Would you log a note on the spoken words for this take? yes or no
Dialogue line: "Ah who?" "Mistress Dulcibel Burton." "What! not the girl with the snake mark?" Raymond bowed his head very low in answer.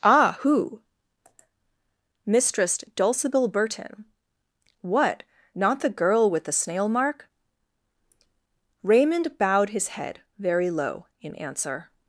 yes